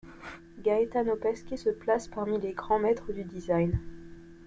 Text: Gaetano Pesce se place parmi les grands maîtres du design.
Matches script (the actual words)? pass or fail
pass